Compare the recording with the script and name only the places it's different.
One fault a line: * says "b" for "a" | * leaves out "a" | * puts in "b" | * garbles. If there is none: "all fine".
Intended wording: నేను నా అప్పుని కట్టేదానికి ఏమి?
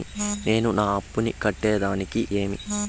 all fine